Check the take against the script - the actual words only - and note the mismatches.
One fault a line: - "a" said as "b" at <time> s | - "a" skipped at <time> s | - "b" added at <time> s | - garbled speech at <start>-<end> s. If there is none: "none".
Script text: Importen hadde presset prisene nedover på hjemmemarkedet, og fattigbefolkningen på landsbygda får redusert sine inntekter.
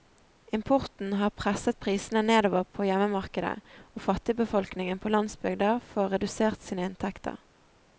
- "hadde" said as "har" at 1.2 s